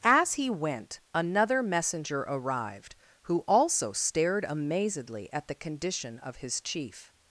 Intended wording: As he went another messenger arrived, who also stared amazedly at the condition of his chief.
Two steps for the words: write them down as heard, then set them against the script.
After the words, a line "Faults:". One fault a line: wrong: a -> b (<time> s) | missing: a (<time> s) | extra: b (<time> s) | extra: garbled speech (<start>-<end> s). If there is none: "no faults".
As he went another messenger arrived, who also stared amazedly at the condition of his chief.
Faults:
no faults